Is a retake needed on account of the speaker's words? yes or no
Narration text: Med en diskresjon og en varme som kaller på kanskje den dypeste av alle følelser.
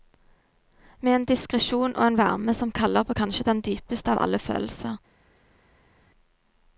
no